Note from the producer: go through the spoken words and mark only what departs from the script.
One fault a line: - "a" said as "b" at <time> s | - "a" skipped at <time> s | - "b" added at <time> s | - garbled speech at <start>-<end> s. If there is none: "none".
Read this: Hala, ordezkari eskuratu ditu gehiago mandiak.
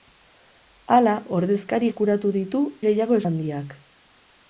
none